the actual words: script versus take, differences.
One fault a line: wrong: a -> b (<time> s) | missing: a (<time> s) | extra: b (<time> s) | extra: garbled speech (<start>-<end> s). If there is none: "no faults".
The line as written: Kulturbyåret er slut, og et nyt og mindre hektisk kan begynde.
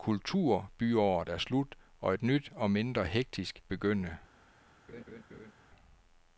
missing: kan (3.6 s)